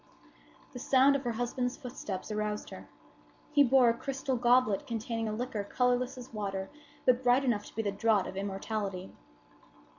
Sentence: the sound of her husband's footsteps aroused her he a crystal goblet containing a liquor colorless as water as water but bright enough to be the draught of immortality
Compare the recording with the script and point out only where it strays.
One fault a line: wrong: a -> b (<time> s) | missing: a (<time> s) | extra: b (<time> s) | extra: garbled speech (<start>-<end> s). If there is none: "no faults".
extra: bore (3.6 s)
missing: as water (6.7 s)